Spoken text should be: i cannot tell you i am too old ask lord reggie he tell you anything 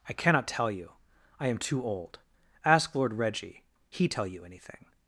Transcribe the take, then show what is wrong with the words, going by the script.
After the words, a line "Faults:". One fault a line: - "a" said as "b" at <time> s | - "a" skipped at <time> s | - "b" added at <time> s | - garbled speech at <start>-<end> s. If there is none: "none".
i cannot tell you i am too old ask lord reggie he tell you anything
Faults:
none